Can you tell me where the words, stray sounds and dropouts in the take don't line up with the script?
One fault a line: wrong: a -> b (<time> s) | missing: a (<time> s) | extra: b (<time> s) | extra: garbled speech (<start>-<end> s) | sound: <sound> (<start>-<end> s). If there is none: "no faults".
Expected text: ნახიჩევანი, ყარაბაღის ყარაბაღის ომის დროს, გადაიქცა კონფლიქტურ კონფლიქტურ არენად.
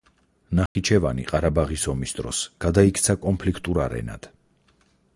sound: dropout (0.7-0.8 s)
missing: ყარაბაღის (1.9 s)
missing: კონფლიქტურ (3.8 s)